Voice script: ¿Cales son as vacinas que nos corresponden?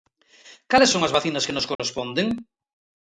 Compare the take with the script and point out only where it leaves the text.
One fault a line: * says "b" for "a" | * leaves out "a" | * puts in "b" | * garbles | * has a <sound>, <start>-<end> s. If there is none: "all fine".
* has a dropout, 1.8-1.8 s